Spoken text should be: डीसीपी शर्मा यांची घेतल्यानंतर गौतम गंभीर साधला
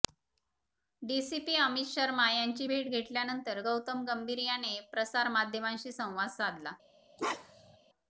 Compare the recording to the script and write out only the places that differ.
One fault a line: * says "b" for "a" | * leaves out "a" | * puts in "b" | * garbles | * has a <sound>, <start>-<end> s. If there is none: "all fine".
* puts in "अमित"
* puts in "भेट"
* puts in "याने प्रसारमाध्यमांशी संवाद"
* has a bark, 7.2-7.8 s